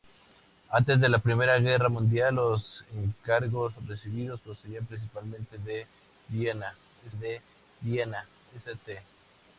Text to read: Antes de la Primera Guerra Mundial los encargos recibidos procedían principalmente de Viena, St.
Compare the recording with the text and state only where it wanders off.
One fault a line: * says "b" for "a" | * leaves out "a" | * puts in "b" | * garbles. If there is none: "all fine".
* puts in "de Viena"